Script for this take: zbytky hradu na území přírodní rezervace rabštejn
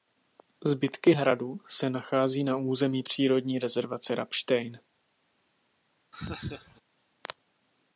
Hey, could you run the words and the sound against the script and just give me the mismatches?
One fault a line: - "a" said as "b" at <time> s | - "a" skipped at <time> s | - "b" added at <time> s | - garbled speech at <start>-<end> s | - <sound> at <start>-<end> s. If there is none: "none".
- "se nachází" added at 1.7 s
- laugh at 6.1-6.8 s